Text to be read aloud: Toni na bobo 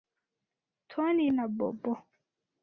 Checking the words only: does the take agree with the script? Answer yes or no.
yes